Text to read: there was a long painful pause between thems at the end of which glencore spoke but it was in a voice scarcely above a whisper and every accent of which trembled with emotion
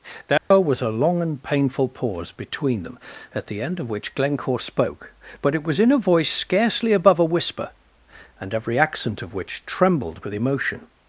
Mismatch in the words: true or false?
true